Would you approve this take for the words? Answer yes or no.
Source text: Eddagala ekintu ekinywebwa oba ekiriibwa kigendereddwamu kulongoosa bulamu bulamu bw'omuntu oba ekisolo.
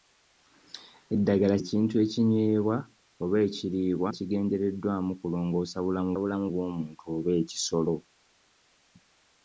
yes